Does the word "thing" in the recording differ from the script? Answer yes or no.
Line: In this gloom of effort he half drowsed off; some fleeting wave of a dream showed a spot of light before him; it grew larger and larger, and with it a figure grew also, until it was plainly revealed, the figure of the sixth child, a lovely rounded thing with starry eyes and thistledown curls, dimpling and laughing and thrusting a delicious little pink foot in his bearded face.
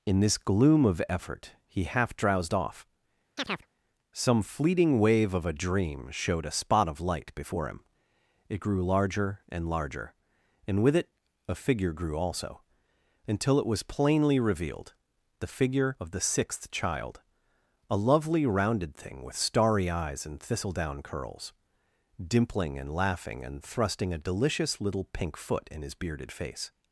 no